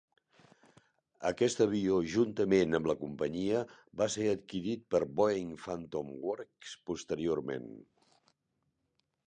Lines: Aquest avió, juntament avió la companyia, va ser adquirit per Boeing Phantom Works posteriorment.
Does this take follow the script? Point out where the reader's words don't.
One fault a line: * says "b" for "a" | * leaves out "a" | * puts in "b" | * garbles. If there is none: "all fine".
* says "amb" for "avió"